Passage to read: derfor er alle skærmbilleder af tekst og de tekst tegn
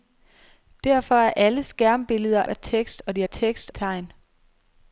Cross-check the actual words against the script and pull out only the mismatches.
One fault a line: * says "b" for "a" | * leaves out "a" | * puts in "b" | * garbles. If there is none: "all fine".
all fine